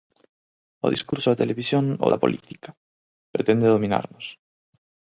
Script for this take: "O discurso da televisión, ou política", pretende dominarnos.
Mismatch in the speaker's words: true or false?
true